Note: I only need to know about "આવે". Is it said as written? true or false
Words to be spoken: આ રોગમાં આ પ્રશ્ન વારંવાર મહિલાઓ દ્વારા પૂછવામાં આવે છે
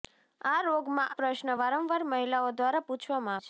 false